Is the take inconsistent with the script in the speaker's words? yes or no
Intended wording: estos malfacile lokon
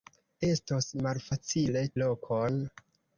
no